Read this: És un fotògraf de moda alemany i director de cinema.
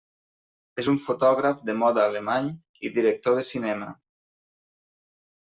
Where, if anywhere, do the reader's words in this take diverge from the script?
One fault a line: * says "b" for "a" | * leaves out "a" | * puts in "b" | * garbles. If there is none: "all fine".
all fine